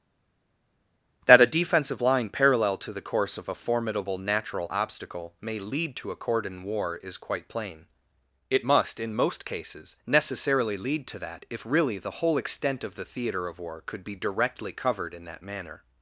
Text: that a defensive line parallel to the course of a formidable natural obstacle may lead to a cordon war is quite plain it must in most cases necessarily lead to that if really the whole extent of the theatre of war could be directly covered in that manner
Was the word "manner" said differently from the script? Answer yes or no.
no